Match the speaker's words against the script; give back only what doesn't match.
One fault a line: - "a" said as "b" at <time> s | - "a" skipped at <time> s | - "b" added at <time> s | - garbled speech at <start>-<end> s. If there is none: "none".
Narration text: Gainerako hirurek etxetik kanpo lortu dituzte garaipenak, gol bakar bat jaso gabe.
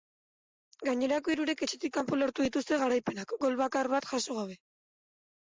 none